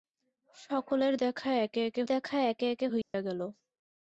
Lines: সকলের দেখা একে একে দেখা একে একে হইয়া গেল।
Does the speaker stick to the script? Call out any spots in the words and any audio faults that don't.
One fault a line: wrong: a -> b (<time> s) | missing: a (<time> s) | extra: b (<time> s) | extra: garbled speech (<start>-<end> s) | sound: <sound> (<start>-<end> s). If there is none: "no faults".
sound: dropout (3.0-3.1 s)